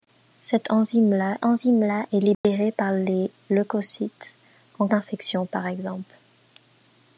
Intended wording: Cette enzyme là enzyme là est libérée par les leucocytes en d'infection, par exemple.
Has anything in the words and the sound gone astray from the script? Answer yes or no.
yes